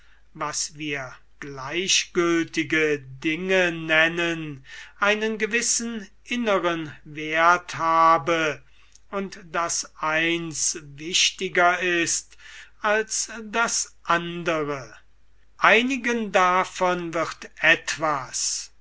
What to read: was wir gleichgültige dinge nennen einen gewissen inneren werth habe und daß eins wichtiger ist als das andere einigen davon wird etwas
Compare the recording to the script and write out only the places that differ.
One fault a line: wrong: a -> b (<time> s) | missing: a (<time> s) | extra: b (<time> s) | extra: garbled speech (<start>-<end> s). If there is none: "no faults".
no faults